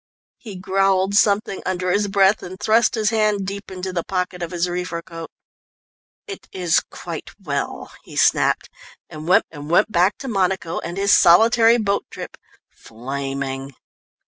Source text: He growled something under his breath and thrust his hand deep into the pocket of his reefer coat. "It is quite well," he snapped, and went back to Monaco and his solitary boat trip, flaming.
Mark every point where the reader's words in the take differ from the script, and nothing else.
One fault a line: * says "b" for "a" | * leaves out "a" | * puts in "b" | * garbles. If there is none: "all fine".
* puts in "and went"